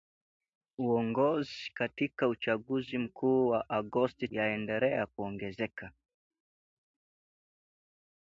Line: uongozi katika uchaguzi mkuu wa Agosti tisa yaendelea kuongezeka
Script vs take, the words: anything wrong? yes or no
yes